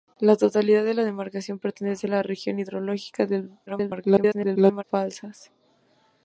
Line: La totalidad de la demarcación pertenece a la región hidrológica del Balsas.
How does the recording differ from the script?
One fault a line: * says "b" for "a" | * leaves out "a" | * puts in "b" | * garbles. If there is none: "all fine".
* garbles